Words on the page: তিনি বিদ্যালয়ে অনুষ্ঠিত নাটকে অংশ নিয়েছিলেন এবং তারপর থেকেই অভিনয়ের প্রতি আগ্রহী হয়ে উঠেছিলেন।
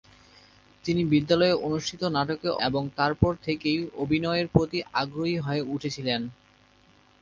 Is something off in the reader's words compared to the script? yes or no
yes